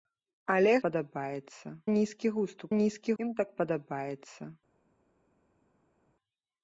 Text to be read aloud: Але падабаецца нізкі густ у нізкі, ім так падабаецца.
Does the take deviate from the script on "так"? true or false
false